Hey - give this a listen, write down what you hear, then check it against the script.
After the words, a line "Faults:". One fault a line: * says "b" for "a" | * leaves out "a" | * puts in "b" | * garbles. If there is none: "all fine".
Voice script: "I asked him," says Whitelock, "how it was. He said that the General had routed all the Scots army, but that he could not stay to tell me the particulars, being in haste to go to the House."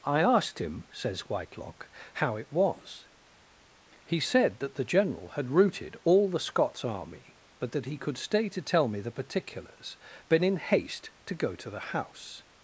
"I asked him," says Whitelock, "how it was. He said that the General had routed all the Scots army, but that he could stay to tell me the particulars, been in haste to go to the House."
Faults:
* leaves out "not"
* says "been" for "being"